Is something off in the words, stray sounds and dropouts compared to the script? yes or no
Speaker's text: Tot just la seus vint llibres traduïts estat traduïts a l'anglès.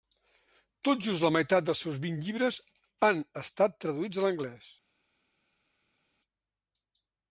yes